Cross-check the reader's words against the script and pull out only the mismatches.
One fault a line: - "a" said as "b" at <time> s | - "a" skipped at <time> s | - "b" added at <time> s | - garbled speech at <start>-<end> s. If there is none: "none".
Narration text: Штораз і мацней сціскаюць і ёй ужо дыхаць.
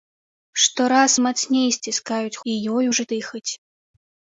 none